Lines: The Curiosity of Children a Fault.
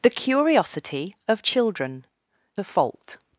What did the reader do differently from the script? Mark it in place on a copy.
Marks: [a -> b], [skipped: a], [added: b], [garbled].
The Curiosity of Children a Fault.